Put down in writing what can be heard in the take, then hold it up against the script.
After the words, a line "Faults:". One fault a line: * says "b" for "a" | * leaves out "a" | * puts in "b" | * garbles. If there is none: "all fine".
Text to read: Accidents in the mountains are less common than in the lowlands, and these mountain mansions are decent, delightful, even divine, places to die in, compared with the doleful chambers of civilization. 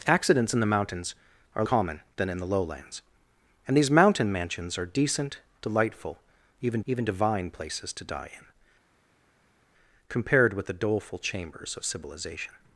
Accidents in the mountains are common than in the lowlands, and these mountain mansions are decent, delightful, even even divine, places to die in, compared with the doleful chambers of civilization.
Faults:
* leaves out "less"
* puts in "even"